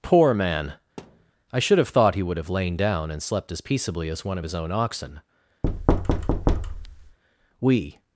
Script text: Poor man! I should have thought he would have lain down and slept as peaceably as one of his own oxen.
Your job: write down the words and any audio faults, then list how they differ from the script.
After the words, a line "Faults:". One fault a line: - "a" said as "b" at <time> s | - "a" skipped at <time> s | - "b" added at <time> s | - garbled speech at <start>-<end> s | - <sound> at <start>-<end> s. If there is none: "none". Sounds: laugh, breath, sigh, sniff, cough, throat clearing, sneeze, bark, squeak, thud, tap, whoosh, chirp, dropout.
Poor man! I should have thought he would have lain down and slept as peaceably as one of his own oxen. "We
Faults:
- thud at 1.0-1.3 s
- thud at 5.6-7.2 s
- "We" added at 7.6 s